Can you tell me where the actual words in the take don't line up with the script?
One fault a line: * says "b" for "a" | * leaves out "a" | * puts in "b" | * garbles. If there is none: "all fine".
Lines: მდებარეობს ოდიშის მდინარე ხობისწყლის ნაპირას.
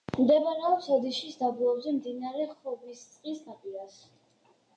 * puts in "დაბლობზე"